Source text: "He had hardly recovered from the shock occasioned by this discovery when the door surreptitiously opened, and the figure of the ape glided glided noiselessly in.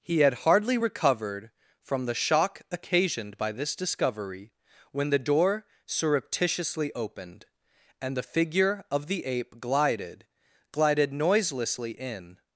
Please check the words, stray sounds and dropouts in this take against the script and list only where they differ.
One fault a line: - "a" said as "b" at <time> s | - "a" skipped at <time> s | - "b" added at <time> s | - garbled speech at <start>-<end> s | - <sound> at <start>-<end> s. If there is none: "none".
none